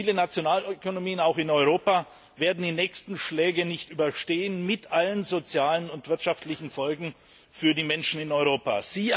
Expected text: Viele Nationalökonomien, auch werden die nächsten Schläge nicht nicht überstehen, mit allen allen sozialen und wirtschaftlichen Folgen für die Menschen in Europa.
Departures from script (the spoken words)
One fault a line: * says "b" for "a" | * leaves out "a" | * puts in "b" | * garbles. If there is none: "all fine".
* puts in "in Europa"
* leaves out "nicht"
* leaves out "allen"